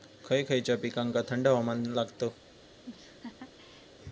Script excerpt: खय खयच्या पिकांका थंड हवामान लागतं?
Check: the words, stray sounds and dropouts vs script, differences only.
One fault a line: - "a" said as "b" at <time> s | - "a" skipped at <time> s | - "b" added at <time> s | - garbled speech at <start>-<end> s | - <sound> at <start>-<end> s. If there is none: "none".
- laugh at 2.8-3.9 s